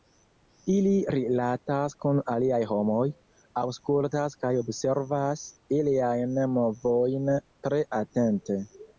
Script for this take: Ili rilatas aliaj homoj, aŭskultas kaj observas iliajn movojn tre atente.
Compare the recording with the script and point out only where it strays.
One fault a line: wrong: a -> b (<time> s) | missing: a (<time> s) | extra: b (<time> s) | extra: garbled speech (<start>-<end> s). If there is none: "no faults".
extra: kun (2.0 s)